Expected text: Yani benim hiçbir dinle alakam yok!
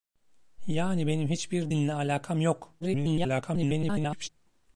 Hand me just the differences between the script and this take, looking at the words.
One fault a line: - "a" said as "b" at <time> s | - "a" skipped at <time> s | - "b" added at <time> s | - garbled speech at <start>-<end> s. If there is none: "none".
- garbled speech at 2.8-4.3 s